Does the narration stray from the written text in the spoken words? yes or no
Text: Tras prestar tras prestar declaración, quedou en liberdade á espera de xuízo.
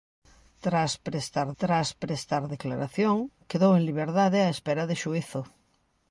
no